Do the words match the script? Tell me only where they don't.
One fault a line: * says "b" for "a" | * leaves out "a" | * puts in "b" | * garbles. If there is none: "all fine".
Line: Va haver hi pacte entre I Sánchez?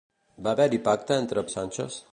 all fine